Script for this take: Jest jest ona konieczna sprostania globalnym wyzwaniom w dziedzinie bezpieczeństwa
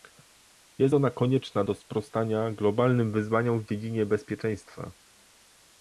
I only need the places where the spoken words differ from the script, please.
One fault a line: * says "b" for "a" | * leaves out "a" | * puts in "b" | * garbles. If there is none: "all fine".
* leaves out "jest"
* puts in "do"